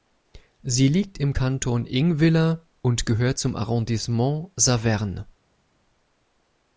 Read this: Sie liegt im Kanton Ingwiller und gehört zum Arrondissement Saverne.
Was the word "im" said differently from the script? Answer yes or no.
no